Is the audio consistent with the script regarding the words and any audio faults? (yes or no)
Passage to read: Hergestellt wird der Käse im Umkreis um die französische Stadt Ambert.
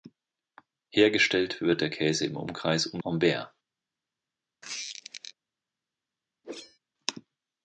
no